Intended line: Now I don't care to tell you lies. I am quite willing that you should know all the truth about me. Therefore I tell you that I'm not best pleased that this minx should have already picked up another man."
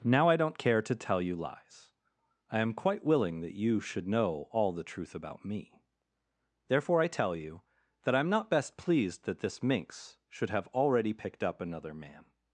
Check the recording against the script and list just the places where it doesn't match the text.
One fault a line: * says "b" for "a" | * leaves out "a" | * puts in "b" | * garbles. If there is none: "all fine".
all fine